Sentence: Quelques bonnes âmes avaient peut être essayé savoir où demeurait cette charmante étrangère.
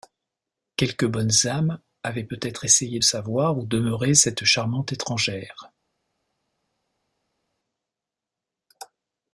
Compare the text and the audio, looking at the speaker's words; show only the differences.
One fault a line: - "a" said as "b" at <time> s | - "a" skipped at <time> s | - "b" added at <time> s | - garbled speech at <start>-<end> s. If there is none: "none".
none